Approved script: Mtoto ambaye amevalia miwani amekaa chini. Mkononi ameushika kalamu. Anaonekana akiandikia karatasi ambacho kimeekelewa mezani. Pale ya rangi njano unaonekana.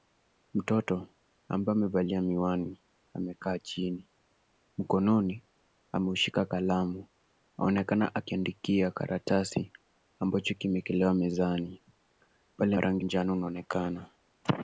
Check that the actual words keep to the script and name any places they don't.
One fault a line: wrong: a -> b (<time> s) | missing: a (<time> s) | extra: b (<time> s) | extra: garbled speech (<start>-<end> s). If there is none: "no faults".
no faults